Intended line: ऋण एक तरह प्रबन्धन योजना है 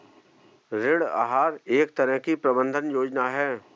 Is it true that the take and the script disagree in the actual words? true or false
true